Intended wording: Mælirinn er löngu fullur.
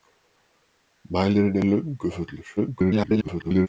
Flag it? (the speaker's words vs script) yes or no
yes